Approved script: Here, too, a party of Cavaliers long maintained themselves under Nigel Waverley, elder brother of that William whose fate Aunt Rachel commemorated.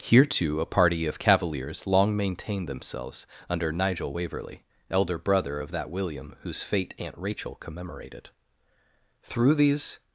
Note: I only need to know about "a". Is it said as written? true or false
true